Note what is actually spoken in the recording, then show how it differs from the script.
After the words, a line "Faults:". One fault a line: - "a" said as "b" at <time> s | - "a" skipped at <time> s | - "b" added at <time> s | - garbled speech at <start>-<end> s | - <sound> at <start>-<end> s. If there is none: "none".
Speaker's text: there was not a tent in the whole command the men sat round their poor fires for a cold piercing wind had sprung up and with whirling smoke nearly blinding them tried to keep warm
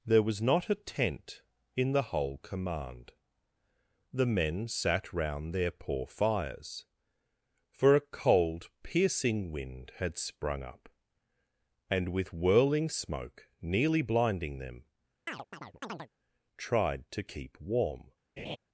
there was not a tent in the whole command the men sat round their poor fires for a cold piercing wind had sprung up and with whirling smoke nearly blinding them tried to keep warm
Faults:
- chirp at 15.3-16.1 s
- laugh at 18.4-18.6 s